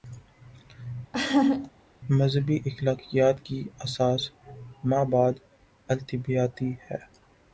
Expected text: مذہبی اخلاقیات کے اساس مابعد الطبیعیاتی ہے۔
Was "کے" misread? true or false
true